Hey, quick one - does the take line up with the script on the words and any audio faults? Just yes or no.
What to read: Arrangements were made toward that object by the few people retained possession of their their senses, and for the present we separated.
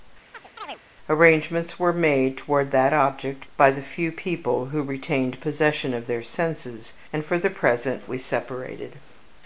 no